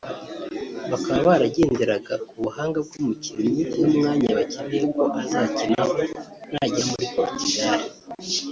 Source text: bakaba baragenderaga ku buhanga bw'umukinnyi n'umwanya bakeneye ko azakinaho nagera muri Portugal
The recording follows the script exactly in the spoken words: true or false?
true